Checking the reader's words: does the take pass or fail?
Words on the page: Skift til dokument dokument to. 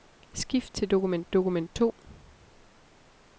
pass